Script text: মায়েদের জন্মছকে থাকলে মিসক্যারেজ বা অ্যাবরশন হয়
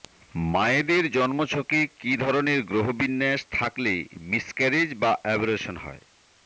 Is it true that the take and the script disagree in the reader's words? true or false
true